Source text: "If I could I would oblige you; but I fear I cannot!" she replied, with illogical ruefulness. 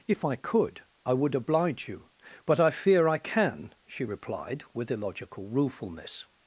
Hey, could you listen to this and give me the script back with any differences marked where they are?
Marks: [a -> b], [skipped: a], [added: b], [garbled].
"If I could I would oblige you; but I fear I [cannot!" -> can] she replied, with illogical ruefulness.